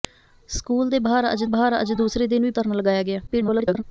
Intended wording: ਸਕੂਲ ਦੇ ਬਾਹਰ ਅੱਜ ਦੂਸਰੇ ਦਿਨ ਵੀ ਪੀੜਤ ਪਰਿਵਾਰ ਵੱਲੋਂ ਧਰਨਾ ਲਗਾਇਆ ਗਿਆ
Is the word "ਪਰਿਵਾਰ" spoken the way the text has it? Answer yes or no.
no